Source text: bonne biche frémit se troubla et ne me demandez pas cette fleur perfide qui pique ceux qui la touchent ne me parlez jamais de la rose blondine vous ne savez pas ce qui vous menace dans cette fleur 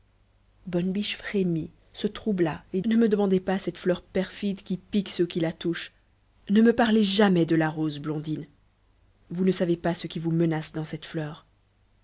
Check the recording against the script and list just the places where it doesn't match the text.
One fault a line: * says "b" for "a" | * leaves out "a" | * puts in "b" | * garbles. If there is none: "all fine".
all fine